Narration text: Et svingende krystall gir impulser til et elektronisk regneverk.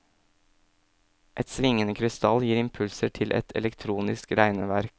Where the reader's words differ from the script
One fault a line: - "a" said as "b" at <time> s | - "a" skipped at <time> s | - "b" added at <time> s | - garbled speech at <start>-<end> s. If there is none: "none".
none